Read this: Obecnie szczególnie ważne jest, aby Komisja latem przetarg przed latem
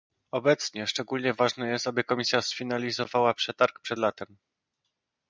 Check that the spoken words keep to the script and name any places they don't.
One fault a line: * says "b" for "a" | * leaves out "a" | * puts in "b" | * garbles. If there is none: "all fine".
* says "sfinalizowała" for "latem"